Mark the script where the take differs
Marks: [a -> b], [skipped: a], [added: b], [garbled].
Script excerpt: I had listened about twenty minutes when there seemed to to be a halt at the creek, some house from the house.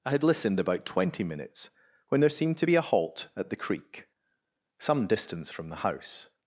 I had listened about twenty minutes when there seemed to [skipped: to] be a halt at the creek, some [house -> distance] from the house.